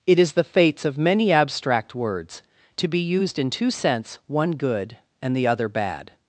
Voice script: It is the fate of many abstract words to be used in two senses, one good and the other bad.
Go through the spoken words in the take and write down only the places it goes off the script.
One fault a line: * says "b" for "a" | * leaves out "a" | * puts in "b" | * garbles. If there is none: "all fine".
* says "fates" for "fate"
* says "sense" for "senses"